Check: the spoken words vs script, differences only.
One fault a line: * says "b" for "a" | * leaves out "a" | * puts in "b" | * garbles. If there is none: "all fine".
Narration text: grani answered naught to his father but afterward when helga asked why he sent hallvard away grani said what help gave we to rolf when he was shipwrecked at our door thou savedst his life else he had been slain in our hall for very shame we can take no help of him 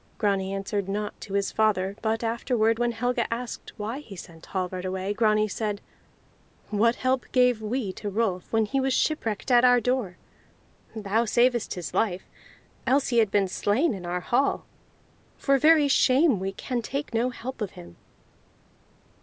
all fine